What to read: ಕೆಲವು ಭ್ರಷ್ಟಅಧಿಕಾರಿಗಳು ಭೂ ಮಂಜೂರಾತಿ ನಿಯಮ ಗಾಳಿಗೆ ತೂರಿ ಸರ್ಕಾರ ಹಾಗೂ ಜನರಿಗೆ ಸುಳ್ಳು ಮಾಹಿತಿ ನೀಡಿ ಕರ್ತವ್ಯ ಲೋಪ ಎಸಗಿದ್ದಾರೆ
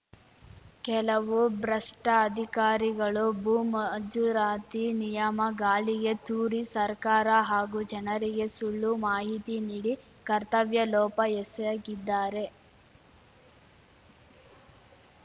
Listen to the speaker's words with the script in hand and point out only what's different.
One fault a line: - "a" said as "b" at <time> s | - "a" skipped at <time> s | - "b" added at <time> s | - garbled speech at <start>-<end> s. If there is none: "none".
none